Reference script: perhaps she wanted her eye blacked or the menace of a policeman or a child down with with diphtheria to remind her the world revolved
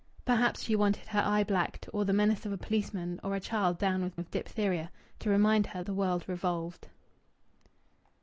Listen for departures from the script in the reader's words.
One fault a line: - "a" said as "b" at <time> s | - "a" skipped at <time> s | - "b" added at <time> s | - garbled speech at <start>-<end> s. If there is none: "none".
none